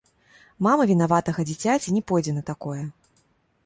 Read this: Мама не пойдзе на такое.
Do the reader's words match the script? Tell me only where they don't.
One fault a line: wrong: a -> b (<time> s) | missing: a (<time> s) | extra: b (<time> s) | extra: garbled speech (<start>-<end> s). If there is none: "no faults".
extra: вінаватага дзіцяці (0.9 s)